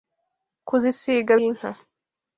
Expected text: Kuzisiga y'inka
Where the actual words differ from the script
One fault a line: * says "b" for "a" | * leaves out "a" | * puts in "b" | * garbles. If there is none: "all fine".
all fine